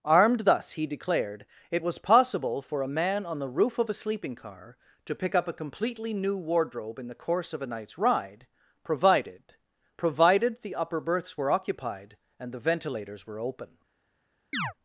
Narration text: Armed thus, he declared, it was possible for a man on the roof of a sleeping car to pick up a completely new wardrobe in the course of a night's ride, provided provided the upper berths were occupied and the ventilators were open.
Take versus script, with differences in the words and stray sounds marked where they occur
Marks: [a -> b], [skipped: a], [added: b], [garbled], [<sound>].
Armed thus, he declared, it was possible for a man on the roof of a sleeping car to pick up a completely new wardrobe in the course of a night's ride, provided provided the upper berths were occupied and the ventilators were open. [chirp]